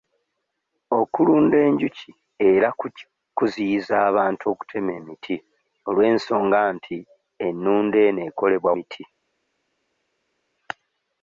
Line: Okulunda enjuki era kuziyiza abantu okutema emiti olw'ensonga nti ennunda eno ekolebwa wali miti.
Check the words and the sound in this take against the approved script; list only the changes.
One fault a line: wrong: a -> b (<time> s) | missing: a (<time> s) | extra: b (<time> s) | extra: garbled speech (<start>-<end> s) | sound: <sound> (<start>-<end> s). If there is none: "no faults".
missing: wali (8.7 s)